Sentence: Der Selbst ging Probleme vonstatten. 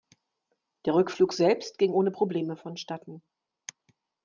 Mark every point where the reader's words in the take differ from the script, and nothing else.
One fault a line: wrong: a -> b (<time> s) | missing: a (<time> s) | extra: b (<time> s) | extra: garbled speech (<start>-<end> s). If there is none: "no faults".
extra: Rückflug (0.9 s)
extra: ohne (1.9 s)